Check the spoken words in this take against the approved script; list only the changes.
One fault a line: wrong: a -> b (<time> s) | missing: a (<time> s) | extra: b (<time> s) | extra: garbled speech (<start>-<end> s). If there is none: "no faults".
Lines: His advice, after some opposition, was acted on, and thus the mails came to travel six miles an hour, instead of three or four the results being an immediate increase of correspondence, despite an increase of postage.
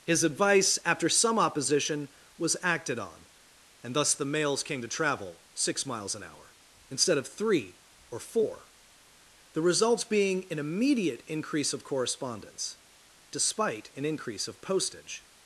no faults